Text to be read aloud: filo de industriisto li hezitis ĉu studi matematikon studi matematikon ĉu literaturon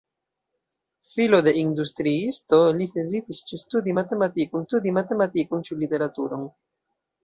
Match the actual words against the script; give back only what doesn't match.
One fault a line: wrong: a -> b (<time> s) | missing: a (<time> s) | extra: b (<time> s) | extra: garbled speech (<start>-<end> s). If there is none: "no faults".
no faults